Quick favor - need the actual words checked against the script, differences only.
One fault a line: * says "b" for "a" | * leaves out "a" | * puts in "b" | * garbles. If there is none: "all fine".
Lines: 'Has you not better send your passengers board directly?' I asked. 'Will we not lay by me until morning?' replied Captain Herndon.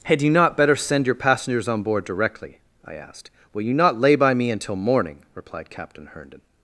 * says "Had" for "Has"
* puts in "on"
* says "you" for "we"